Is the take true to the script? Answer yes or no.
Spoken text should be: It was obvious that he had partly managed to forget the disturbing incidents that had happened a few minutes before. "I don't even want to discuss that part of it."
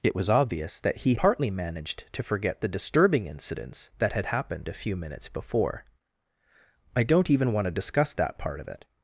no